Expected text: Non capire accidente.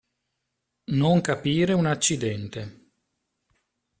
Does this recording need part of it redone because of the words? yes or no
yes